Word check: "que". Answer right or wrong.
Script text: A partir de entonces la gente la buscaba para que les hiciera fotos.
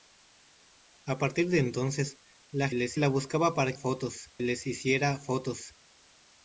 wrong